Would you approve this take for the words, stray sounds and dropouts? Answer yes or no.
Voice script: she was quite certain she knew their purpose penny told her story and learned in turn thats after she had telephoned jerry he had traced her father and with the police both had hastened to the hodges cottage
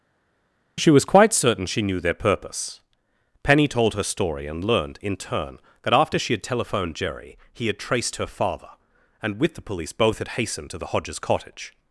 no